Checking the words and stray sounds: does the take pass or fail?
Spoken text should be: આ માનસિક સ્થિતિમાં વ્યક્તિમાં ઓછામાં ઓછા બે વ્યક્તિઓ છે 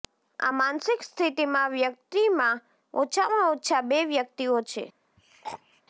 fail